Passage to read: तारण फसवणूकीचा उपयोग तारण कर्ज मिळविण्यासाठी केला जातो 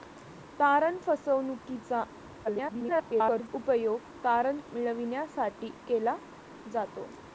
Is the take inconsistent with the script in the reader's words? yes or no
yes